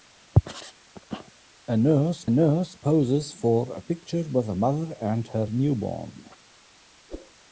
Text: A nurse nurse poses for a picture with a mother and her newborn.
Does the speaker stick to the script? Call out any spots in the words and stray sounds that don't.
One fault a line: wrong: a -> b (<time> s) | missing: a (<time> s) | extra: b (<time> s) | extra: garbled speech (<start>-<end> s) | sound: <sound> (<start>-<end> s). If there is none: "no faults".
sound: whoosh (7.1-7.3 s)